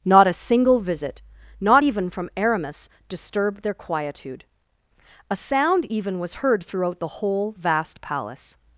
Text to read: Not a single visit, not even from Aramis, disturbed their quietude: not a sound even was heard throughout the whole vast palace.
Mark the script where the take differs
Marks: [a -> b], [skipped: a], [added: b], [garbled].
Not a single visit, not even from Aramis, disturbed their quietude: [skipped: not] a sound even was heard throughout the whole vast palace.